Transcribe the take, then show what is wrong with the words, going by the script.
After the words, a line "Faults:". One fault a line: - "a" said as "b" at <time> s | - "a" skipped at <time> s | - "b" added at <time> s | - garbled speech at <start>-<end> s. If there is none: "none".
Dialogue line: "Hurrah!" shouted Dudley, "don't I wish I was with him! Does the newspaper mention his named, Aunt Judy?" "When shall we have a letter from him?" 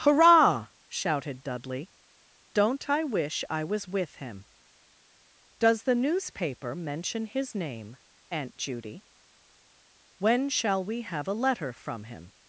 "Hurrah!" shouted Dudley, "don't I wish I was with him! Does the newspaper mention his name, Aunt Judy?" "When shall we have a letter from him?"
Faults:
- "named" said as "name" at 7.5 s